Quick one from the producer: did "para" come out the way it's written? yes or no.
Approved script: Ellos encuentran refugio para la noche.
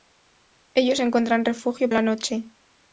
no